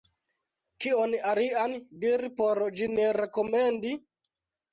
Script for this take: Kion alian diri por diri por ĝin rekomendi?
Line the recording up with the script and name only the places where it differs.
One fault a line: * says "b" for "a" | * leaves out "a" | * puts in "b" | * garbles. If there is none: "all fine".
* leaves out "diri por"